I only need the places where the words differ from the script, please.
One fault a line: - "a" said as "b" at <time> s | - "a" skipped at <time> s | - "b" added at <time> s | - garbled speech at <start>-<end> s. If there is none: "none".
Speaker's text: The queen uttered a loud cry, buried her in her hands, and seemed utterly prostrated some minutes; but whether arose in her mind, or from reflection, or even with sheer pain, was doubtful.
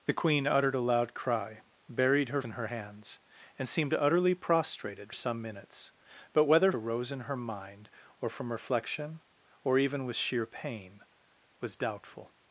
none